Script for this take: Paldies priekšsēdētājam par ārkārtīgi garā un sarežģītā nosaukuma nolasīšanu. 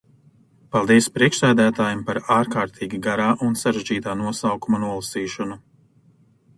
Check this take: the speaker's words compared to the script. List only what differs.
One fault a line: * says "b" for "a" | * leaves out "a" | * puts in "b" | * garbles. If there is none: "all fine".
all fine